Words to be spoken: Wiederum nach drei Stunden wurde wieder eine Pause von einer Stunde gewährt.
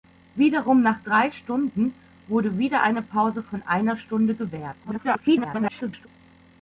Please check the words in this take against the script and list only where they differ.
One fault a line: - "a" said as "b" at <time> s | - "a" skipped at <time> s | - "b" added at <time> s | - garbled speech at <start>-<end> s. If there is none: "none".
- garbled speech at 4.8-6.1 s